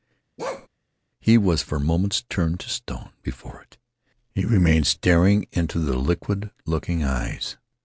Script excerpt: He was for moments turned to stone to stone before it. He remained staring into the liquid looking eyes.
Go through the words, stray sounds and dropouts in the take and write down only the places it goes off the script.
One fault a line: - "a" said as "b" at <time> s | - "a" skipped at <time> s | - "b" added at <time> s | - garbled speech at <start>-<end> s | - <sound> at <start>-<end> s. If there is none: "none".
- bark at 0.4-0.7 s
- "to stone" skipped at 3.1 s